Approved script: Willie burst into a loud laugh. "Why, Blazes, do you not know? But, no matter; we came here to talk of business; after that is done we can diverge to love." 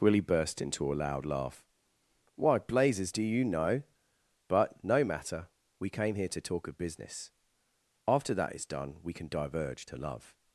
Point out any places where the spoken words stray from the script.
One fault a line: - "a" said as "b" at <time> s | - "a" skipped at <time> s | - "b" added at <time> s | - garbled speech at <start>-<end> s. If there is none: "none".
- "not" skipped at 3.4 s